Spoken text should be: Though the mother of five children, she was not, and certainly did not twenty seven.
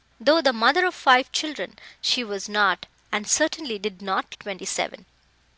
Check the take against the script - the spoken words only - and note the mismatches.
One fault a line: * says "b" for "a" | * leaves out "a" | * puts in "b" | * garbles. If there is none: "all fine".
all fine